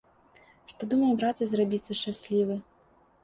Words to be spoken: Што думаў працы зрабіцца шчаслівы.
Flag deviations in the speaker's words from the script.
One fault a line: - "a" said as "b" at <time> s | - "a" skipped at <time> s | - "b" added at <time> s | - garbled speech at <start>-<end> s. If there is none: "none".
none